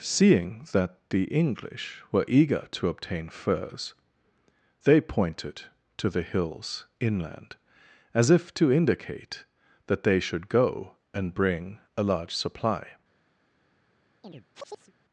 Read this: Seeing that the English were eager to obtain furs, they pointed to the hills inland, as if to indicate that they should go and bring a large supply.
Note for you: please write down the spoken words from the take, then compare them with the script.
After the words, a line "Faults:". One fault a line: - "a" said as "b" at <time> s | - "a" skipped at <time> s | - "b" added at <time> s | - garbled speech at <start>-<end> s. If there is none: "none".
Seeing that the English were eager to obtain furs, they pointed to the hills inland, as if to indicate that they should go and bring a large supply.
Faults:
none